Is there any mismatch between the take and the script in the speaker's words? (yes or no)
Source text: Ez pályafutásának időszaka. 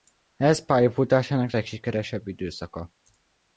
yes